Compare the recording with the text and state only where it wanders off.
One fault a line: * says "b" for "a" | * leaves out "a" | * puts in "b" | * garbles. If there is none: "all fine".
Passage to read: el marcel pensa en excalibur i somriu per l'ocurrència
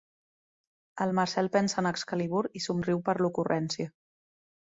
all fine